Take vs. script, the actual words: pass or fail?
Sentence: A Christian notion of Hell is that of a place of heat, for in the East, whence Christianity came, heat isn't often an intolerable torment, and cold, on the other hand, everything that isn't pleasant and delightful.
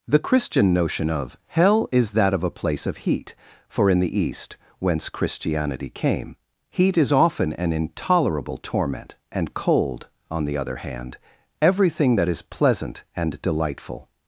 fail